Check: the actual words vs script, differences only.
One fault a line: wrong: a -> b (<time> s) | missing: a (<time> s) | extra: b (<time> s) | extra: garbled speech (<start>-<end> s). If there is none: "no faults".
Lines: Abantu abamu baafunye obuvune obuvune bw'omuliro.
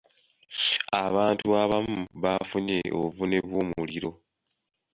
missing: obuvune (3.4 s)